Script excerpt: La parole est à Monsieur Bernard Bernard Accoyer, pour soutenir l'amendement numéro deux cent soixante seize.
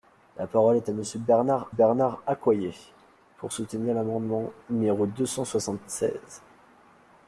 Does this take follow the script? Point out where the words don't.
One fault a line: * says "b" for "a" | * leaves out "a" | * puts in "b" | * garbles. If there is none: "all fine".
all fine